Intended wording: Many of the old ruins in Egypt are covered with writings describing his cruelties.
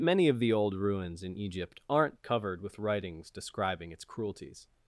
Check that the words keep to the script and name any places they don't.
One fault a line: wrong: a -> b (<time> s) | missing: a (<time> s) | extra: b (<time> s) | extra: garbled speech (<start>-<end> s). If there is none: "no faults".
wrong: are -> aren't (1.9 s)
wrong: his -> its (3.9 s)